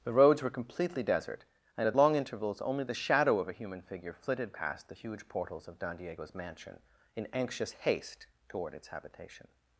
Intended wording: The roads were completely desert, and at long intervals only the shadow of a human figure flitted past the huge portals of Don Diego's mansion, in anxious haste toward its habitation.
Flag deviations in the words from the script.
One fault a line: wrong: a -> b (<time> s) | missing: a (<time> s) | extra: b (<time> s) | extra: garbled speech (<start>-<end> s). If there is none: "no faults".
no faults